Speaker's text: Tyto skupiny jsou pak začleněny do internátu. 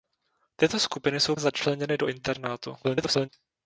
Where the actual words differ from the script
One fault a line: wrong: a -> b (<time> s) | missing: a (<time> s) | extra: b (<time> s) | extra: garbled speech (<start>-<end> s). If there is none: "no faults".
missing: pak (1.4 s)
extra: garbled speech (2.8-3.3 s)